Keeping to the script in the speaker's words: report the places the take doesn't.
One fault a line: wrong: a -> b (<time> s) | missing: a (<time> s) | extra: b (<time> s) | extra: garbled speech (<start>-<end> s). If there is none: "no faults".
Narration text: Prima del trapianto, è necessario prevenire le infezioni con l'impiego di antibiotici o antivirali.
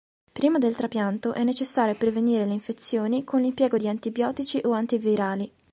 no faults